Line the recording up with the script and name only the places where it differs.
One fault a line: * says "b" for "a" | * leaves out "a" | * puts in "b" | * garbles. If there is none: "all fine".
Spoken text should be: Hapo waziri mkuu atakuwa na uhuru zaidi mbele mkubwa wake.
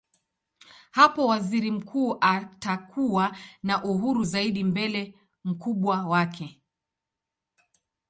all fine